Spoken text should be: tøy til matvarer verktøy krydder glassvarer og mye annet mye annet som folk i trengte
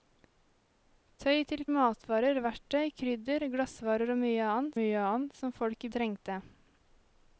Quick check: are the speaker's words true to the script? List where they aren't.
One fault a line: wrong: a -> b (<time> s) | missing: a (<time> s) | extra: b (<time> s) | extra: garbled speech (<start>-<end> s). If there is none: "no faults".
no faults